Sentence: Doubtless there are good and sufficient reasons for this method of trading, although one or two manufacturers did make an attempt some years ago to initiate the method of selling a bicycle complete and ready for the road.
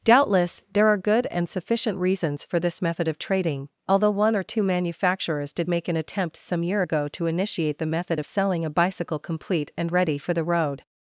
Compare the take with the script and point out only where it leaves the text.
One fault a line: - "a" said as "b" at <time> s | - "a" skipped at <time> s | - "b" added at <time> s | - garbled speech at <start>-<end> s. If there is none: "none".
- "years" said as "year" at 6.6 s